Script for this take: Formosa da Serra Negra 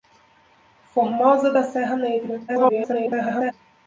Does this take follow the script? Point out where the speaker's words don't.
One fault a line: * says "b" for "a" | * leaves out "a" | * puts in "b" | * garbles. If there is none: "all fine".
* garbles